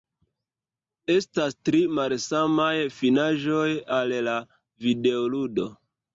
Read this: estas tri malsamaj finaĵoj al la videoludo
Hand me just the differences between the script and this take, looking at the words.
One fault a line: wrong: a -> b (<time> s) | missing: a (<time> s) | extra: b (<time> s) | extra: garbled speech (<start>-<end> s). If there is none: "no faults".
no faults